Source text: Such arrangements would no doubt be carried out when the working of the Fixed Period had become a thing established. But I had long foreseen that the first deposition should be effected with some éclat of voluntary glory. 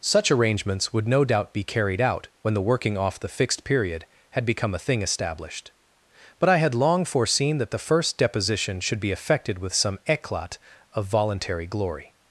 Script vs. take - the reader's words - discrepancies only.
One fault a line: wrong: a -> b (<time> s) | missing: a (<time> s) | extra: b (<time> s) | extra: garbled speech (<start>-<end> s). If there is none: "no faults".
wrong: of -> off (3.0 s)